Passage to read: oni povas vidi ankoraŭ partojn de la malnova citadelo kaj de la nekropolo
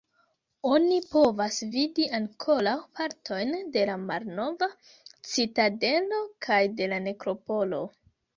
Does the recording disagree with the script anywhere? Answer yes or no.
no